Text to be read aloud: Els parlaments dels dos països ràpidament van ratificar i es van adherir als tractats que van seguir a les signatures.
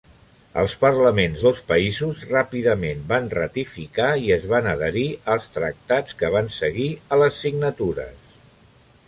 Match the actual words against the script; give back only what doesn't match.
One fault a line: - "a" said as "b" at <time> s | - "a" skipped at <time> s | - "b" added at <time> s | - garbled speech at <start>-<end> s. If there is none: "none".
- "dels" skipped at 1.4 s